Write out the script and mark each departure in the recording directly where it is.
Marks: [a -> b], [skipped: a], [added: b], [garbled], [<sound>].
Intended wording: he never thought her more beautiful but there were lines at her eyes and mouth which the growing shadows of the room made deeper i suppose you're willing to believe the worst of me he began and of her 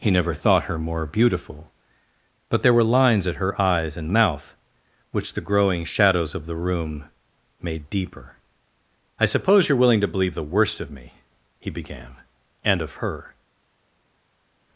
he never thought her more beautiful but there were lines at her eyes and mouth which the growing shadows of the room made deeper i suppose you're willing to believe the worst of me he began and of her